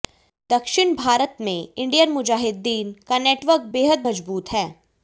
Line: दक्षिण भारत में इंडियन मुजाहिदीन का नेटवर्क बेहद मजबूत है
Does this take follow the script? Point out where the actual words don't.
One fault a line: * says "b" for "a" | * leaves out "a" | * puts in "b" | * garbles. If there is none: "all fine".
all fine